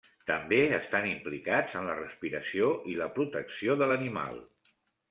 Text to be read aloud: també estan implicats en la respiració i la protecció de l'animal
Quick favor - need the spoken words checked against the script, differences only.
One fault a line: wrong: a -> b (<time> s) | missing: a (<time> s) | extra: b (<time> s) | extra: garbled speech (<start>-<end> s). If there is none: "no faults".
no faults